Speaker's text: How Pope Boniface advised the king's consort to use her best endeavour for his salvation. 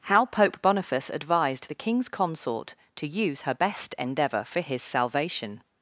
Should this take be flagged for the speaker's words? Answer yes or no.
no